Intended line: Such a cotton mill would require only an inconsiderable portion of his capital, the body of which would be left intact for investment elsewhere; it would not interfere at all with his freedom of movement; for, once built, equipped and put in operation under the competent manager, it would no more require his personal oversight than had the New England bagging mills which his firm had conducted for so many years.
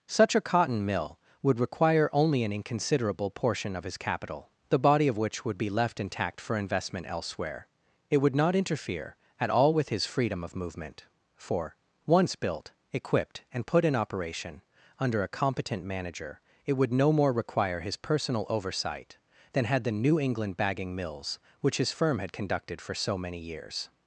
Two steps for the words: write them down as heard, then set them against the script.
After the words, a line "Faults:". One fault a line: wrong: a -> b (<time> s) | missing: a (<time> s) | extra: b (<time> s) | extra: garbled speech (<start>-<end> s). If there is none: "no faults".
Such a cotton mill would require only an inconsiderable portion of his capital, the body of which would be left intact for investment elsewhere; it would not interfere at all with his freedom of movement; for, once built, equipped and put in operation under a competent manager, it would no more require his personal oversight than had the New England bagging mills which his firm had conducted for so many years.
Faults:
wrong: the -> a (15.2 s)